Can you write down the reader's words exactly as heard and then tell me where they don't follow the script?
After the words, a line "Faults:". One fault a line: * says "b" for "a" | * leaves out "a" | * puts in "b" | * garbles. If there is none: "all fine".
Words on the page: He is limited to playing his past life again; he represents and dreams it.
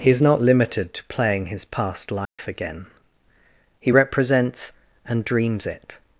He is not limited to playing his past life again; he represents and dreams it.
Faults:
* puts in "not"